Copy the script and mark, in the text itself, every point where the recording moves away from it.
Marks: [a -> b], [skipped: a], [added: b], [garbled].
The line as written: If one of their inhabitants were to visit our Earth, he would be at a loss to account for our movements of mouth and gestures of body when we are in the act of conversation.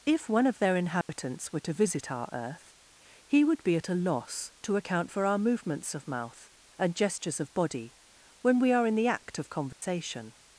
If one of their inhabitants were to visit our Earth, he would be at a loss to account for our movements of mouth and gestures of body when we are in the act of conversation.